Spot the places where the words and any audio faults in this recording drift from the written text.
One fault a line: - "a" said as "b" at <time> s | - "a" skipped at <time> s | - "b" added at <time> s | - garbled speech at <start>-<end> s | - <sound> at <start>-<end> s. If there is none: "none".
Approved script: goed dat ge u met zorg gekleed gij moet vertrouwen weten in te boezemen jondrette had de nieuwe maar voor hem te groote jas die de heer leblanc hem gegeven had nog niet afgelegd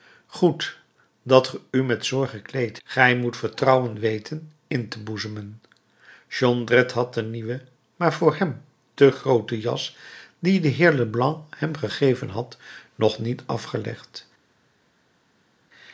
none